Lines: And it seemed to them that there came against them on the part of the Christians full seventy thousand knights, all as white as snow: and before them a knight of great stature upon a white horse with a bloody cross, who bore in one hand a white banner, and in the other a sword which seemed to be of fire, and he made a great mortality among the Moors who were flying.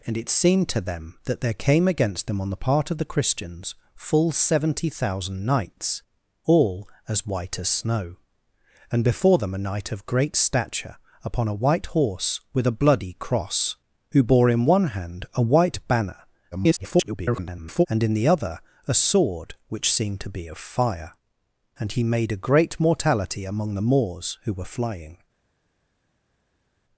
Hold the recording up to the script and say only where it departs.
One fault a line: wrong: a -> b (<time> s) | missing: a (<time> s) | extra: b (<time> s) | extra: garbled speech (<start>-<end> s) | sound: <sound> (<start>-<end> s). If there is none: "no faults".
extra: garbled speech (16.5-17.9 s)